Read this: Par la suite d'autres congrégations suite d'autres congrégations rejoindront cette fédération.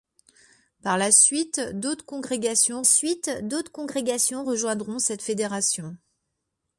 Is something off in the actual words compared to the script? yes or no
no